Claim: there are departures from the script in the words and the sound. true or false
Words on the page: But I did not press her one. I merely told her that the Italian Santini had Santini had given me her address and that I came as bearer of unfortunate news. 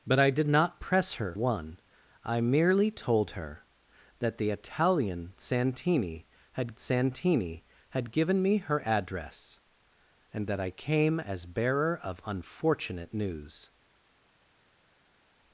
false